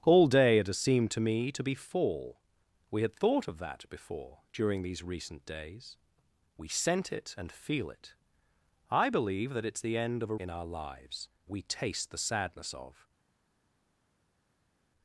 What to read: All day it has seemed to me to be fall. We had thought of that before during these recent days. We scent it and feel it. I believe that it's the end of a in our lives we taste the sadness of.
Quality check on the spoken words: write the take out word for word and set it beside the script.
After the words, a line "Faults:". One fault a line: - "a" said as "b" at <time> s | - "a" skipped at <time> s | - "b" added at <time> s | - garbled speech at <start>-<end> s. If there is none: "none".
All day it has seemed to me to be fall. We had thought of that before during these recent days. We scent it and feel it. I believe that it's the end of a in our lives we taste the sadness of.
Faults:
none